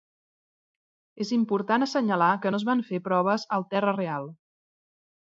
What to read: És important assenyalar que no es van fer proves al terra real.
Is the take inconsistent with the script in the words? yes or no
no